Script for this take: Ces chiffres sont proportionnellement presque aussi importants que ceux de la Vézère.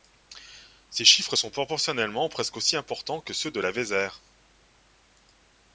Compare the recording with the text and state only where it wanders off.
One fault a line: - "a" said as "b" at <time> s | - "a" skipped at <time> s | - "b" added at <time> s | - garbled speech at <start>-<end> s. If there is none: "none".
none